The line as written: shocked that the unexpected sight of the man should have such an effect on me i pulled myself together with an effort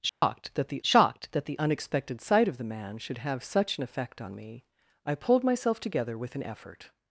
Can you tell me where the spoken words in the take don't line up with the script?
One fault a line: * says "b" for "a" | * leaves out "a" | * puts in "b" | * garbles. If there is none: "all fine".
* puts in "shocked that the"